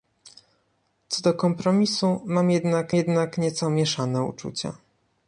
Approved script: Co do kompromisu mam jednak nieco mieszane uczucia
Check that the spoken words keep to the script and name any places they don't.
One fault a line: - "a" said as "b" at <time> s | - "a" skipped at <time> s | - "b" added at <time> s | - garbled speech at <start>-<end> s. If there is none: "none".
- "jednak" added at 2.9 s